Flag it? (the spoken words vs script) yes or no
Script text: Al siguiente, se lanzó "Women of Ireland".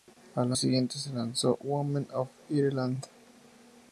no